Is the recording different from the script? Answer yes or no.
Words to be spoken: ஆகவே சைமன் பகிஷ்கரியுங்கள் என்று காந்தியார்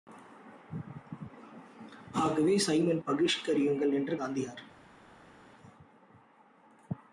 no